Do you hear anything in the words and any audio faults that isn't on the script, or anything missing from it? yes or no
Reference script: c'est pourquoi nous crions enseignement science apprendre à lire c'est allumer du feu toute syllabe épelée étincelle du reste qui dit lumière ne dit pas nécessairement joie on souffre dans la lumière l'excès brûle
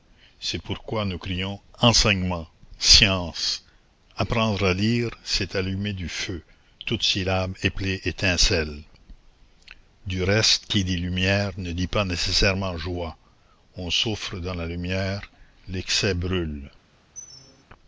yes